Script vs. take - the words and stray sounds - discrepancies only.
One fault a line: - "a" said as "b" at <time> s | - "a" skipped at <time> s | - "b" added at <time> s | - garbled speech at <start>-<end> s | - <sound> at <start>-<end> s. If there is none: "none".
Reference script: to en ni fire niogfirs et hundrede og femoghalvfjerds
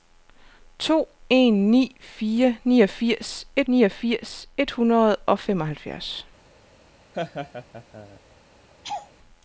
- "niogfirs et" added at 3.7 s
- laugh at 7.1-8.2 s
- laugh at 8.8-9.1 s